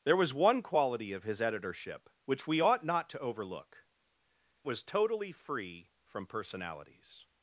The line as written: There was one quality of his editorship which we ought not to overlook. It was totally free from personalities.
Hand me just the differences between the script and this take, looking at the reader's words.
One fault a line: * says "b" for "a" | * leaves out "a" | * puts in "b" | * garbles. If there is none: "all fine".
* leaves out "It"